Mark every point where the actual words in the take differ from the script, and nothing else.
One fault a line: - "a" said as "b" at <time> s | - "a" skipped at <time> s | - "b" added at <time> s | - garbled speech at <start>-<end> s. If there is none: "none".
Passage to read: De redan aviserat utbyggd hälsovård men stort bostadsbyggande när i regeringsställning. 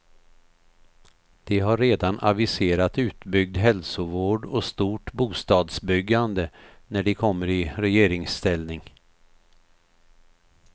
- "har" added at 1.6 s
- "men" said as "och" at 4.5 s
- "de kommer" added at 7.0 s